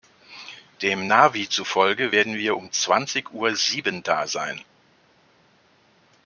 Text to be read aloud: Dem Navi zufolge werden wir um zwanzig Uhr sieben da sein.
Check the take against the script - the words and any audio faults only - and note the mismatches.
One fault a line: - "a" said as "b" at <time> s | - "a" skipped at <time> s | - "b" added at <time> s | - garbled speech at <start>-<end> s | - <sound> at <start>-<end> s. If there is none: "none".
none